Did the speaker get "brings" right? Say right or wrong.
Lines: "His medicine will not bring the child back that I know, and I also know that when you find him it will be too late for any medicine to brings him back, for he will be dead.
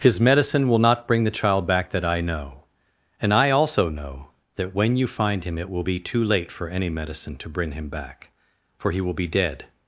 wrong